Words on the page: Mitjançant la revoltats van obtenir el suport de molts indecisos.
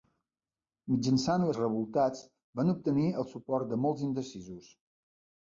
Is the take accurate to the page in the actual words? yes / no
yes